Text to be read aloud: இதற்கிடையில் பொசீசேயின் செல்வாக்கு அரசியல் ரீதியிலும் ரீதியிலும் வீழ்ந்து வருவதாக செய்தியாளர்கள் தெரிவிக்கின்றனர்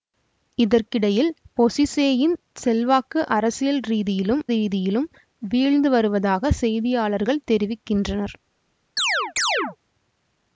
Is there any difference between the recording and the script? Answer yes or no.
no